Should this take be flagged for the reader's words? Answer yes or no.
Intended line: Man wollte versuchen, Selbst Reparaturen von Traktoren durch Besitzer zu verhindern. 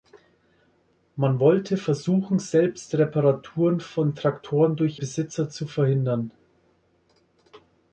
no